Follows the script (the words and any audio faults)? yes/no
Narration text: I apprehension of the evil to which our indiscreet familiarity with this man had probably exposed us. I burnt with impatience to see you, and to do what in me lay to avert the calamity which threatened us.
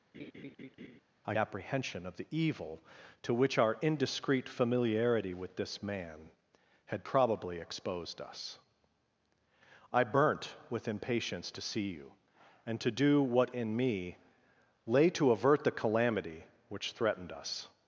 no